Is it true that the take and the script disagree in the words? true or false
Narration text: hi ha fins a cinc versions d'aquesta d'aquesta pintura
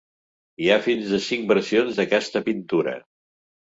true